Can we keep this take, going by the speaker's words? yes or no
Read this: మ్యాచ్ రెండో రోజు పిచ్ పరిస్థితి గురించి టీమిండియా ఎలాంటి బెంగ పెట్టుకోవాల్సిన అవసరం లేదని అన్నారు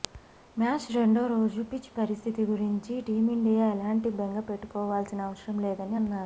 yes